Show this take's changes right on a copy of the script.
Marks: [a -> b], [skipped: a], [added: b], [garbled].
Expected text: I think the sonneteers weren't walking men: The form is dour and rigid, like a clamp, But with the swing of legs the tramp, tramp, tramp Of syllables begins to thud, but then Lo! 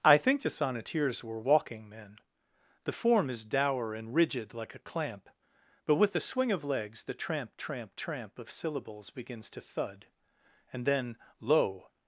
I think the sonneteers [weren't -> were] walking men: The form is dour and rigid, like a clamp, But with the swing of legs the tramp, tramp, tramp Of syllables begins to thud, [but -> and] then Lo!